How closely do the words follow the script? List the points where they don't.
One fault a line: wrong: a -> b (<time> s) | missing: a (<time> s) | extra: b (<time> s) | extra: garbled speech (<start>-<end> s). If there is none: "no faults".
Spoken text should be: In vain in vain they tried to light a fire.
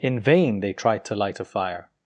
missing: in vain (0.6 s)